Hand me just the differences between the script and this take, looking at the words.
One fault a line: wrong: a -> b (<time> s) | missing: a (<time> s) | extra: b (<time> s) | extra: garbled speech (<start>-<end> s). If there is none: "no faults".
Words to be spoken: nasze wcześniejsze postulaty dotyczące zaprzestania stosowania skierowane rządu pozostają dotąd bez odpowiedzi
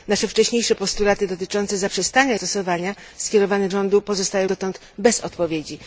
no faults